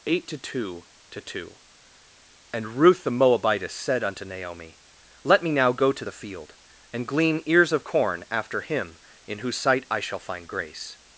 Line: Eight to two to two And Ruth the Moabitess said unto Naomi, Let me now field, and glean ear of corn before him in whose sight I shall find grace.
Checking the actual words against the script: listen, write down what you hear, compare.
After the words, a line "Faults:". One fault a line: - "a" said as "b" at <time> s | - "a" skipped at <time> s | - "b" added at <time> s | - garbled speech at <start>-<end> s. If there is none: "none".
Eight to two to two And Ruth the Moabitess said unto Naomi, Let me now go to the field, and glean ears of corn after him in whose sight I shall find grace.
Faults:
- "go to the" added at 5.7 s
- "ear" said as "ears" at 7.5 s
- "before" said as "after" at 8.3 s